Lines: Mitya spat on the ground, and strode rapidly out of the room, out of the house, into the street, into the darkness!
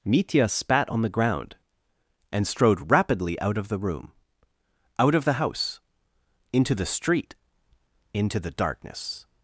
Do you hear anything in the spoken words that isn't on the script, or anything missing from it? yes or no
no